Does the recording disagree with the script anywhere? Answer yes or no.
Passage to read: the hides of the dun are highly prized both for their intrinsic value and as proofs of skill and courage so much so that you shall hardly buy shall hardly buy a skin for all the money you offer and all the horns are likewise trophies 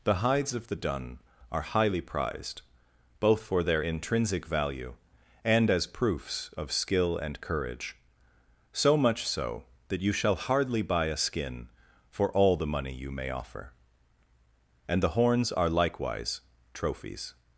yes